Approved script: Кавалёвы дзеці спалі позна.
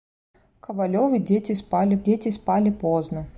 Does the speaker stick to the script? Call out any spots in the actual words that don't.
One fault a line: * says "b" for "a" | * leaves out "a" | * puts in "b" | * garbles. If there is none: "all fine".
* puts in "дзеці спалі"